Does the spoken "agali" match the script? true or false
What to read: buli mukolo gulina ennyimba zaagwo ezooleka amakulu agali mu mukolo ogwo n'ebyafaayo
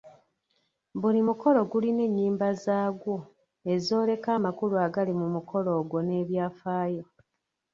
true